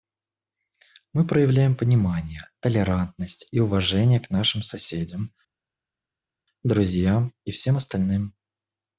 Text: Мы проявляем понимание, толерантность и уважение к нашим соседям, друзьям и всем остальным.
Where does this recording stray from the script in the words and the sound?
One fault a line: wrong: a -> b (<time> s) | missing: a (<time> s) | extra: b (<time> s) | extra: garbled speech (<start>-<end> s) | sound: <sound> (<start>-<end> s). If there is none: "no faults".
no faults